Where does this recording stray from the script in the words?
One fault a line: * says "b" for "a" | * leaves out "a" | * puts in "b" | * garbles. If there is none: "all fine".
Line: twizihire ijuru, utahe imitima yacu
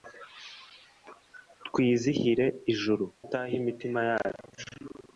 all fine